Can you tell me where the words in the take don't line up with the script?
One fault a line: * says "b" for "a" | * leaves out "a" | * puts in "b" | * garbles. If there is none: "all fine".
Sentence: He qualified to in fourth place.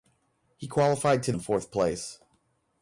all fine